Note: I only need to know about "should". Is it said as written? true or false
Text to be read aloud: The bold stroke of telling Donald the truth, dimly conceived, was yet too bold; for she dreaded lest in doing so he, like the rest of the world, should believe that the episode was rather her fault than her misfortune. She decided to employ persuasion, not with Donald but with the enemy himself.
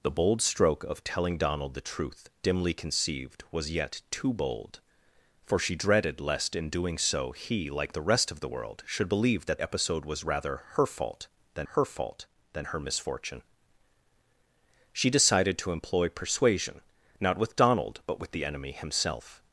true